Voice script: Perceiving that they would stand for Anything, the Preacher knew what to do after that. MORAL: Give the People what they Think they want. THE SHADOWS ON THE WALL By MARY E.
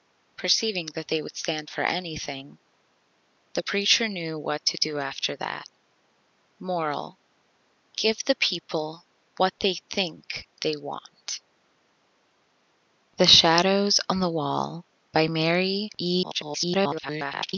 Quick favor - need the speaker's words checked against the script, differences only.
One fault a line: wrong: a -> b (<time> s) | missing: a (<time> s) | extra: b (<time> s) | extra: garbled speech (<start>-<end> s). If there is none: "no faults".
extra: garbled speech (16.2-17.5 s)